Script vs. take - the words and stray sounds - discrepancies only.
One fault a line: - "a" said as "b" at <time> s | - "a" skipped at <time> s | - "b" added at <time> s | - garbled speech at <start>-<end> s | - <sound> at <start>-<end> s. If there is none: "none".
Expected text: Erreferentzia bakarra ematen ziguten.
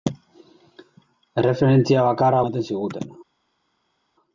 none